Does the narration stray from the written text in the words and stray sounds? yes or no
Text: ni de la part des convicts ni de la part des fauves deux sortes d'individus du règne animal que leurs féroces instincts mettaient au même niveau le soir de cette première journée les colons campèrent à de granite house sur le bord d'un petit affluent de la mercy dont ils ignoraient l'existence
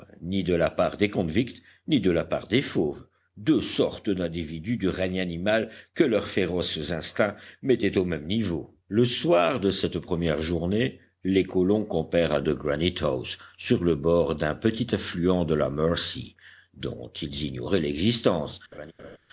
yes